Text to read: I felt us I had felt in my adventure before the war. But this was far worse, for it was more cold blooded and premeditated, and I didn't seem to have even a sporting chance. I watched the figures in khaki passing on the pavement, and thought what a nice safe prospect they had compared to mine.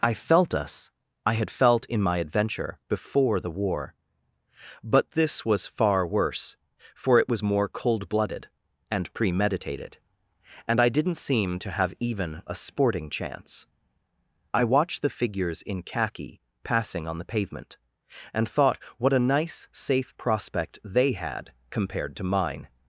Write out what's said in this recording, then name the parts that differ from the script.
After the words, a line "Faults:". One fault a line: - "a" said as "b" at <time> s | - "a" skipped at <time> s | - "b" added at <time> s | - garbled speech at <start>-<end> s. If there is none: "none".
I felt us I had felt in my adventure before the war. But this was far worse, for it was more cold blooded and premeditated, and I didn't seem to have even a sporting chance. I watched the figures in khaki passing on the pavement, and thought what a nice safe prospect they had compared to mine.
Faults:
none